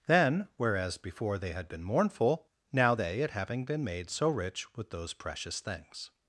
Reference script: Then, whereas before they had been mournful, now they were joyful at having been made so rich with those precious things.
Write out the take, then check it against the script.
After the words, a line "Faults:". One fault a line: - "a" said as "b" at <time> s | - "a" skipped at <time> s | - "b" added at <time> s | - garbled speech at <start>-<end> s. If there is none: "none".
Then, whereas before they had been mournful, now they at having been made so rich with those precious things.
Faults:
- "were joyful" skipped at 3.2 s